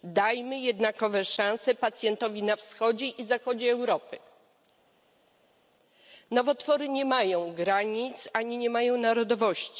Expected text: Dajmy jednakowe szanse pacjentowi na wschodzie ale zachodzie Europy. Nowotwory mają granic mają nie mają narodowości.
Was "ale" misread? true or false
true